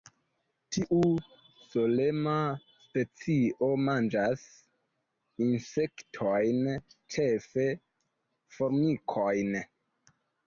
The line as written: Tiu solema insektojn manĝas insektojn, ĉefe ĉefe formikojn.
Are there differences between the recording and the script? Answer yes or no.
yes